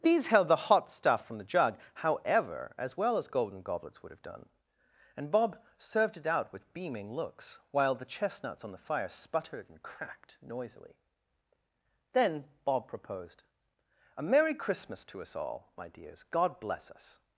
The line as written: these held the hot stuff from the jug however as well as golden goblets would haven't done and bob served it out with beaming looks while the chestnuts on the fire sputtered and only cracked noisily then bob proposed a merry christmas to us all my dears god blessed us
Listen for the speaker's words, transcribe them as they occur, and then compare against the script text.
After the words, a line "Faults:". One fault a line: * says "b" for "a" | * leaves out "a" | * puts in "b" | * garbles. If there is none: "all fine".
these held the hot stuff from the jug however as well as golden goblets would have done and bob served it out with beaming looks while the chestnuts on the fire sputtered and cracked noisily then bob proposed a merry christmas to us all my dears god bless us
Faults:
* says "have" for "haven't"
* leaves out "only"
* says "bless" for "blessed"